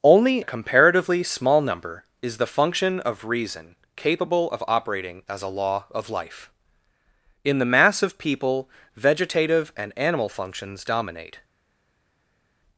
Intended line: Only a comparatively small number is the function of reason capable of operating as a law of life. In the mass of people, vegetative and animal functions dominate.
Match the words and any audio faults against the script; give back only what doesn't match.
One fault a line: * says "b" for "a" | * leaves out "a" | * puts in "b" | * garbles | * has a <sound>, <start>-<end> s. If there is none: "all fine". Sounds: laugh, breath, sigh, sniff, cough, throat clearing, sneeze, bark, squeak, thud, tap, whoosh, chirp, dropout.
all fine